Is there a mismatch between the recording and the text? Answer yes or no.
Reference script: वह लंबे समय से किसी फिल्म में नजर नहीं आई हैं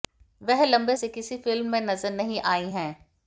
yes